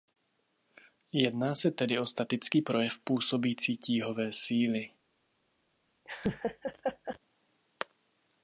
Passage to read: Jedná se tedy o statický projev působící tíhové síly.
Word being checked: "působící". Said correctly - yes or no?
yes